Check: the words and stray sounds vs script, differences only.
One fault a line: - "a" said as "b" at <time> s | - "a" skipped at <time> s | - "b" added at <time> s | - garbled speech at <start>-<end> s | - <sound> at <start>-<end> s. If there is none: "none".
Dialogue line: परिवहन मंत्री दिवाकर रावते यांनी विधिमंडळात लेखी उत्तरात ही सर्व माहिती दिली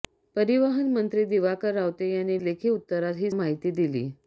- "विधिमंडळात" skipped at 2.4 s
- "सर्व" skipped at 3.3 s